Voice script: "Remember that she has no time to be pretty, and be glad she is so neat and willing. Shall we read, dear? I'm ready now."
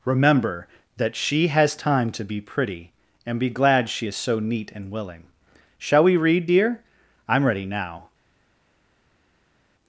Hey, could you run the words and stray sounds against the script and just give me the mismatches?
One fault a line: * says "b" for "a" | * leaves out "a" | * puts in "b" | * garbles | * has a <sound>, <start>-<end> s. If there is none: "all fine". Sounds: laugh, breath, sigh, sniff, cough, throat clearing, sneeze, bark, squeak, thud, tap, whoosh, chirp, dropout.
* leaves out "no"